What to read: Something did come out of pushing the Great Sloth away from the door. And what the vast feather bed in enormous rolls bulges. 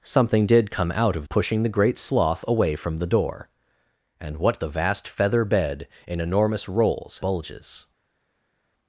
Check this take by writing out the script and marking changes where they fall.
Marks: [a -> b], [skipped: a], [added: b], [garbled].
Something did come out of pushing the Great Sloth away from the door. And what the vast feather bed in enormous rolls bulges.